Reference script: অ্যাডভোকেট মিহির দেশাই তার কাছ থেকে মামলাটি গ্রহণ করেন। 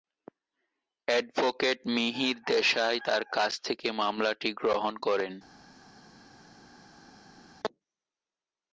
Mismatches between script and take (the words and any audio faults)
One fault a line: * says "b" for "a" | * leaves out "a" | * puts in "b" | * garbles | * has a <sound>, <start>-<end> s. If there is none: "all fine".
all fine